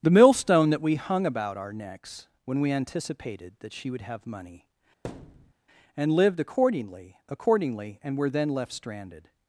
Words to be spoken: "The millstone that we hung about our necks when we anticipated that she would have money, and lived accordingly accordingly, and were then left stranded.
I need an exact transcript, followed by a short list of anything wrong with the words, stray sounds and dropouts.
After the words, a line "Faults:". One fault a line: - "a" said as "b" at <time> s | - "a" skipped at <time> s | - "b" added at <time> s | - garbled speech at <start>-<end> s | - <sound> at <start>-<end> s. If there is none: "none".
"The millstone that we hung about our necks when we anticipated that she would have money, and lived accordingly accordingly, and were then left stranded.
Faults:
- thud at 5.0-5.5 s